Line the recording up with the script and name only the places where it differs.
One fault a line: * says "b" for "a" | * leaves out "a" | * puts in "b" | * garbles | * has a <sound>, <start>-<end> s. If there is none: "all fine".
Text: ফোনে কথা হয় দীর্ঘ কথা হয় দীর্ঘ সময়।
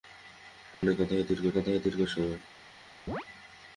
* has a dropout, 0.7-0.8 s
* has a chirp, 3.1-3.3 s